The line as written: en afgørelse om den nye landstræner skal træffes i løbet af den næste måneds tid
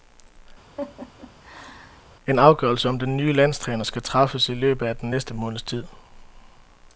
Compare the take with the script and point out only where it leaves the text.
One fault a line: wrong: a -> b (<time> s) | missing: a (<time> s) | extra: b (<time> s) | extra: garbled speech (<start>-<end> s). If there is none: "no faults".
no faults